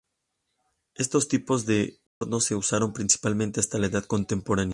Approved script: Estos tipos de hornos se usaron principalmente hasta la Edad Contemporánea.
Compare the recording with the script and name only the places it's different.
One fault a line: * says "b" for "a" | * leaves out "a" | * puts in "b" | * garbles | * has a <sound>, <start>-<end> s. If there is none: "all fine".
* has a dropout, 2.1-2.2 s